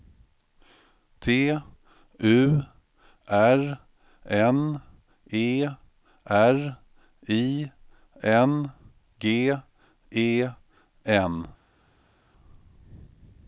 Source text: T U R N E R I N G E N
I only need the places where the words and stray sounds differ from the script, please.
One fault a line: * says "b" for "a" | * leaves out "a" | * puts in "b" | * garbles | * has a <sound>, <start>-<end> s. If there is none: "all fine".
all fine